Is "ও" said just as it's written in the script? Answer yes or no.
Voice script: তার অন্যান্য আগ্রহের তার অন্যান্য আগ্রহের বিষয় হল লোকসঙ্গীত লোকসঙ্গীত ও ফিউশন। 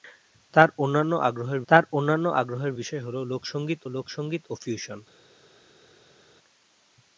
yes